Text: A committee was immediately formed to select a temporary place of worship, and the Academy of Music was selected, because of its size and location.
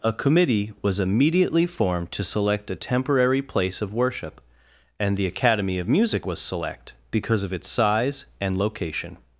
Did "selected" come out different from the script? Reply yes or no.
yes